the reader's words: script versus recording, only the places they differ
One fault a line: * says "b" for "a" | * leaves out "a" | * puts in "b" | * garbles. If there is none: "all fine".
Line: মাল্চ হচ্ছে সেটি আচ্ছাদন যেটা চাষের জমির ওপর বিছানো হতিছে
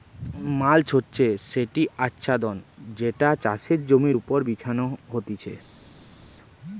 all fine